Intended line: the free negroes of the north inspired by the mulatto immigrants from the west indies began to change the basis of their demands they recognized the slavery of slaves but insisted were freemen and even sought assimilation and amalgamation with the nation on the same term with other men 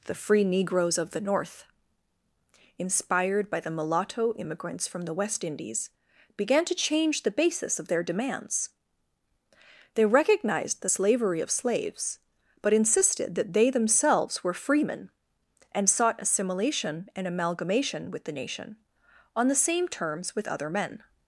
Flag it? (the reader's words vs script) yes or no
yes